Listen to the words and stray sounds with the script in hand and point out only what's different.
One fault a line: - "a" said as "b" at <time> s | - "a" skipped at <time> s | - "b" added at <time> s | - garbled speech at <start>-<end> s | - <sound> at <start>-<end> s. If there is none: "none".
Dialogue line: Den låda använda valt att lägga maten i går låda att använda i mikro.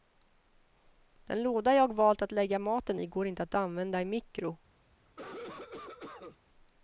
- "använda" said as "jag" at 1.8 s
- "låda" said as "inte" at 3.3 s
- cough at 5.1-6.4 s